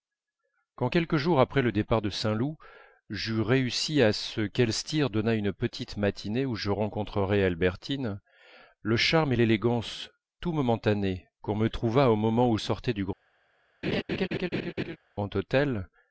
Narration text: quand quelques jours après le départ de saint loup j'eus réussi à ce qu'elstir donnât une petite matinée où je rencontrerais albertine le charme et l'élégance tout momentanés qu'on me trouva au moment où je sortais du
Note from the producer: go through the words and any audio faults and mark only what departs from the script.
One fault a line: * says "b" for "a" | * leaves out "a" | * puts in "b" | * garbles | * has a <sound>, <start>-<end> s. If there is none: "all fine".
* leaves out "je"
* has a laugh, 13.8-15.0 s